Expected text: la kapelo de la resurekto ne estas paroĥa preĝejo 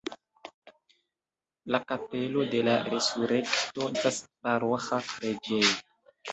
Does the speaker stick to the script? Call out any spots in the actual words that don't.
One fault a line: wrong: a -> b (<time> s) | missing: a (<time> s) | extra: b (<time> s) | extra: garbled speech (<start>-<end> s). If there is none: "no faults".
missing: ne (3.9 s)